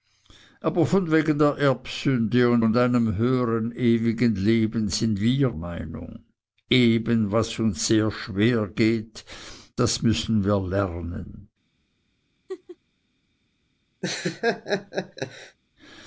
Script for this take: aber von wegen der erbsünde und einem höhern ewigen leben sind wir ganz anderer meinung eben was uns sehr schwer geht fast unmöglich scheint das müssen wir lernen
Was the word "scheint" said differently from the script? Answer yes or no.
yes